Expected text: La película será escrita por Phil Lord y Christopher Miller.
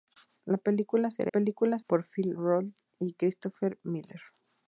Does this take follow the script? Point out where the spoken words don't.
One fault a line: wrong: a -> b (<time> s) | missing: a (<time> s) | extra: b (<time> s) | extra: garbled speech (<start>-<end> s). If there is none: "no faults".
wrong: escrita -> película (1.3 s)